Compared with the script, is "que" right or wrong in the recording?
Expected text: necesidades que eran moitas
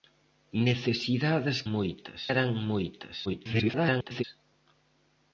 wrong